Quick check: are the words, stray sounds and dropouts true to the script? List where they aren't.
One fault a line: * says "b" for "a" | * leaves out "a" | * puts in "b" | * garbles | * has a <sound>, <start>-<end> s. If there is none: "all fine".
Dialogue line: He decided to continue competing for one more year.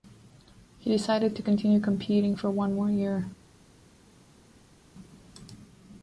all fine